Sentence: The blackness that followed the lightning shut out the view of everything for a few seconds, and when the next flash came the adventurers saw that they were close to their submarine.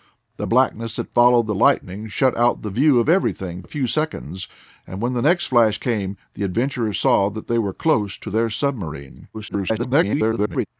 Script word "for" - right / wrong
wrong